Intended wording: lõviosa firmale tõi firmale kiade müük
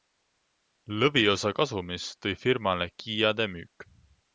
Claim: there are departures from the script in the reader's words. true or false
true